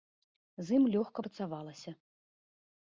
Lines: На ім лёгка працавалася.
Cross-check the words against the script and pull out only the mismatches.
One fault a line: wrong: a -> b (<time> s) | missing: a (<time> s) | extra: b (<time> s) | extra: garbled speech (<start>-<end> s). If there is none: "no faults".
wrong: На -> З (0.7 s)